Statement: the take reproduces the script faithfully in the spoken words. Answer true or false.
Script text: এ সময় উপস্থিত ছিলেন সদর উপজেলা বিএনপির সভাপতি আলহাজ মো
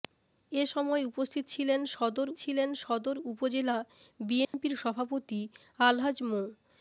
false